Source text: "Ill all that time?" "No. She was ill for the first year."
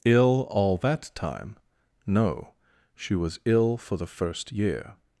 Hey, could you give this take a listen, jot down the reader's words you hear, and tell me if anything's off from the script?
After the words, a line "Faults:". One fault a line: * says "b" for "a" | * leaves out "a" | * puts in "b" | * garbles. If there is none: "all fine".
"Ill all that time?" "No. She was ill for the first year."
Faults:
all fine